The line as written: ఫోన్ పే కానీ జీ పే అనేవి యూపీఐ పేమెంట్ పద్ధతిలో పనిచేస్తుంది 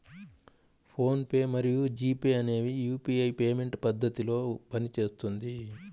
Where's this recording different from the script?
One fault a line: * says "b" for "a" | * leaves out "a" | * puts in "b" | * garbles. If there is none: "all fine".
* says "మరియు" for "కానీ"